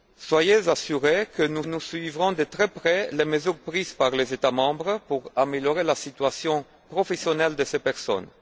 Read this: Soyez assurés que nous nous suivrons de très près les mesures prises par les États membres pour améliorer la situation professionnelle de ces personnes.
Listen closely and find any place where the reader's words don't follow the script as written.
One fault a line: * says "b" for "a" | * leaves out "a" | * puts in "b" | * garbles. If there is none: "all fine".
all fine